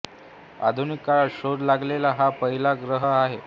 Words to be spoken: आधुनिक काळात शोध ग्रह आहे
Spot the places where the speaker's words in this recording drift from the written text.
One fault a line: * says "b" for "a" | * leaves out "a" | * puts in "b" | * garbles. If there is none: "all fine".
* puts in "लागलेला हा पहिला"